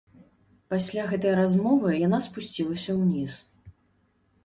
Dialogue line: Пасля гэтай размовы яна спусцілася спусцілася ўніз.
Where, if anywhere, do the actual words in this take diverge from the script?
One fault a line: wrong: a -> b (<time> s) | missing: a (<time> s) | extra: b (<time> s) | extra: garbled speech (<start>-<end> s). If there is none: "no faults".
missing: спусцілася (2.9 s)